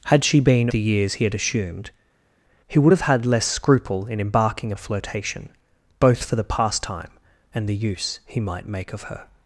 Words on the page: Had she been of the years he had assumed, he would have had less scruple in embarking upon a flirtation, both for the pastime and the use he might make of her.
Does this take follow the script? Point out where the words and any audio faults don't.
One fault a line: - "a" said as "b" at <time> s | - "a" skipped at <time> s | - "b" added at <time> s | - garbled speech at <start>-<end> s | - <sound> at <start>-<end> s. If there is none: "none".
- "of" skipped at 0.7 s
- "upon" skipped at 4.7 s